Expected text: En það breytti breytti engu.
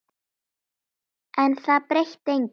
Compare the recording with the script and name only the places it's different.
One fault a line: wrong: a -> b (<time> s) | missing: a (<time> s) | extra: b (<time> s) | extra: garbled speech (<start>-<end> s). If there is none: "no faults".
missing: breytti (2.3 s)